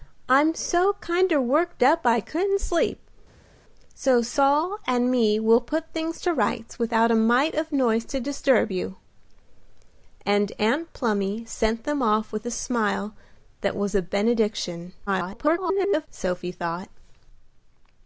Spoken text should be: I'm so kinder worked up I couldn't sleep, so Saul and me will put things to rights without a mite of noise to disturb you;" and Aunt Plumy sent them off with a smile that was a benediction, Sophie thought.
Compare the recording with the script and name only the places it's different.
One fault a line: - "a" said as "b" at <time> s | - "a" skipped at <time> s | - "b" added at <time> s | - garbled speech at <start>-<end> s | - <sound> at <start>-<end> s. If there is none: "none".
- garbled speech at 15.1-16.1 s